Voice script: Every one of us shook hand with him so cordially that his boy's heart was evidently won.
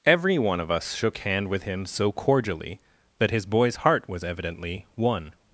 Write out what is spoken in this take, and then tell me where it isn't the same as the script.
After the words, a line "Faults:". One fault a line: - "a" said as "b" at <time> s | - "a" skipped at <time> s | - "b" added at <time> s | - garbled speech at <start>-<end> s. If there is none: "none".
Every one of us shook hand with him so cordially that his boy's heart was evidently won.
Faults:
none